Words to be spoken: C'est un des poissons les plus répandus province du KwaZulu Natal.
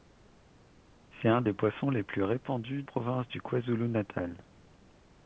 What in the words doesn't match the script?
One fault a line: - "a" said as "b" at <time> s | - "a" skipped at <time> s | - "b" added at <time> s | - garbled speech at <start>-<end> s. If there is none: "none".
none